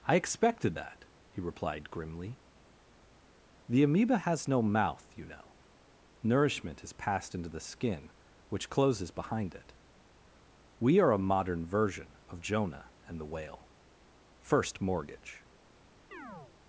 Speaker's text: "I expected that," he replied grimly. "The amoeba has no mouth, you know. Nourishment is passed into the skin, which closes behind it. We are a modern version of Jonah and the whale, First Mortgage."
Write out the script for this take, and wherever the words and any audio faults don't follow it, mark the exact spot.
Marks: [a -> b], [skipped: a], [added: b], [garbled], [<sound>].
"I expected that," he replied grimly. "The amoeba has no mouth, you know. Nourishment is passed into the skin, which closes behind it. We are a modern version of Jonah and the whale, First Mortgage." [chirp]